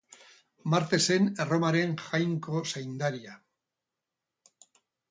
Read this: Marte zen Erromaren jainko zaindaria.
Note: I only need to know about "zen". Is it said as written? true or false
true